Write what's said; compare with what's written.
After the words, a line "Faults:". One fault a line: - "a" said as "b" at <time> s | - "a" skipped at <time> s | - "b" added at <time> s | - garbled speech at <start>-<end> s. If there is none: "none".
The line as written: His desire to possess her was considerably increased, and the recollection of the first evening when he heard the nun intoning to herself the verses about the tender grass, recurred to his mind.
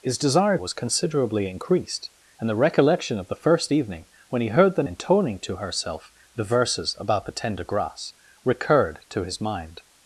His desire was considerably increased, and the recollection of the first evening when he heard the intoning to herself the verses about the tender grass, recurred to his mind.
Faults:
- "to possess her" skipped at 0.6 s
- "nun" skipped at 4.8 s